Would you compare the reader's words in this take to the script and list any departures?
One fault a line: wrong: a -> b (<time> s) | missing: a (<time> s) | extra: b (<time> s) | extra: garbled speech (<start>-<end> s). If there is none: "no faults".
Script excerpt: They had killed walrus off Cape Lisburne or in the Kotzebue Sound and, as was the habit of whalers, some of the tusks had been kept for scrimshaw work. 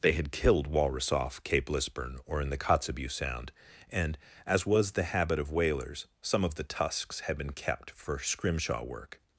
no faults